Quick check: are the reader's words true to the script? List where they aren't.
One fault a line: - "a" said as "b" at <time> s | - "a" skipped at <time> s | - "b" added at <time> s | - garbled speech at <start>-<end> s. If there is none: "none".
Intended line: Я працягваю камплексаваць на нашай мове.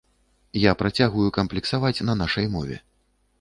none